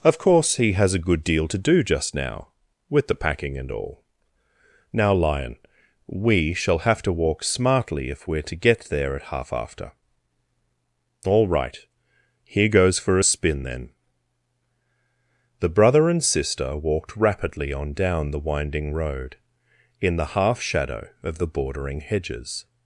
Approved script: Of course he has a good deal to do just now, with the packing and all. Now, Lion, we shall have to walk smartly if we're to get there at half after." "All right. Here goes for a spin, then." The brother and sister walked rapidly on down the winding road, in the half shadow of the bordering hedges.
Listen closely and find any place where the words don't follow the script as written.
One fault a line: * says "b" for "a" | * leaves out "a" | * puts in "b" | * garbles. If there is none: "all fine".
all fine